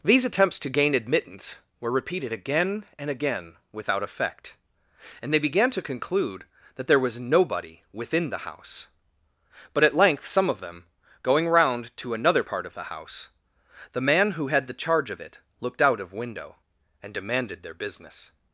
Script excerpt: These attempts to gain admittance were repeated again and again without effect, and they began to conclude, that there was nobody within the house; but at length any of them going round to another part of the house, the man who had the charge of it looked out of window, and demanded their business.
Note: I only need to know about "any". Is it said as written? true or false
false